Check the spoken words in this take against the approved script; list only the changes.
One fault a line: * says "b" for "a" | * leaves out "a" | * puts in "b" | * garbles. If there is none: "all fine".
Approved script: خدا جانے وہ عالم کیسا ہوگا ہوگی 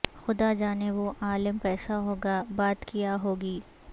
* puts in "بات کیا"